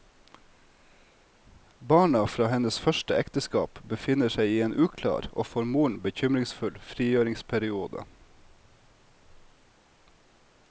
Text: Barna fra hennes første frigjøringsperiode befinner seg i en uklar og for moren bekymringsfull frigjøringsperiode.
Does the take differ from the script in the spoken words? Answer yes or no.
yes